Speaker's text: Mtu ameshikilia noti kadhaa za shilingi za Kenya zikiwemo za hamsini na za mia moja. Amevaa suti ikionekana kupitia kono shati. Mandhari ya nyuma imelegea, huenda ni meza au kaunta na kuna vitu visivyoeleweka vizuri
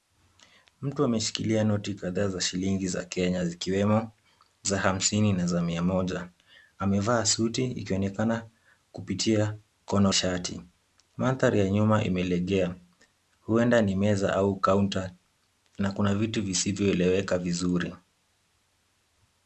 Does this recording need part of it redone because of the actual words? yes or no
no